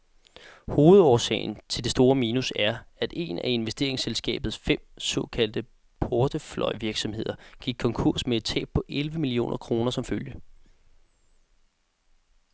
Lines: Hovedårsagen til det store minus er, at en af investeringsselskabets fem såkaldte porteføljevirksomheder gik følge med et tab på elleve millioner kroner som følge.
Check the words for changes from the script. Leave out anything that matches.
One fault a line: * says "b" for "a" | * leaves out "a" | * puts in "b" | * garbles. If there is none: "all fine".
* says "konkurs" for "følge"